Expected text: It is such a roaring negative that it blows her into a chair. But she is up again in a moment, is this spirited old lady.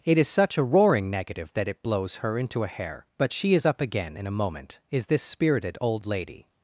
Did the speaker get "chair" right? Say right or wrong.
wrong